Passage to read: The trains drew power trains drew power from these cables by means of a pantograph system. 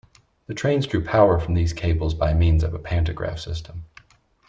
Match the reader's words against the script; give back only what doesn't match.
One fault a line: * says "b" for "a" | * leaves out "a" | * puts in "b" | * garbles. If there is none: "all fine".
* leaves out "trains drew power"